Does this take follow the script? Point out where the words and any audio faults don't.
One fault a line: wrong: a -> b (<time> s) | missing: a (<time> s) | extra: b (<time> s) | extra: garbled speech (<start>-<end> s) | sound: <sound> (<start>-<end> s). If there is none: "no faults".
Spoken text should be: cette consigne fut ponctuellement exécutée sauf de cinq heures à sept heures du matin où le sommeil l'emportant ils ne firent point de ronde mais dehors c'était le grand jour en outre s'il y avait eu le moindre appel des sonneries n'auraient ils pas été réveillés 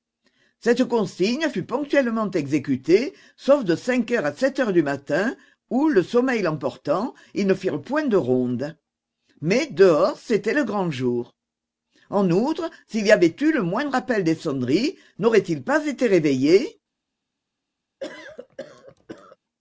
sound: cough (18.0-19.4 s)